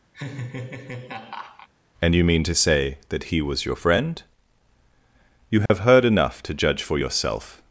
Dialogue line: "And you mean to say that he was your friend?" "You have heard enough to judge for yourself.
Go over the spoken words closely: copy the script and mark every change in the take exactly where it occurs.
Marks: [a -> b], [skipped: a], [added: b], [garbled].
"And you mean to say that he was your friend?" "You have heard enough to judge for yourself.